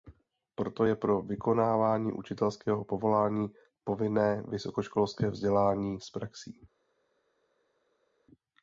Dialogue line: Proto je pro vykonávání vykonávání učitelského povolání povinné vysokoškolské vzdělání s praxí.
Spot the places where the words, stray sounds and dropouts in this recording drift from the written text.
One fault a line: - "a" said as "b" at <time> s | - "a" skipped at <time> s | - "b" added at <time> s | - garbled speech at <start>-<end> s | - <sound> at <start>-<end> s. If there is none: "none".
- "vykonávání" skipped at 2.1 s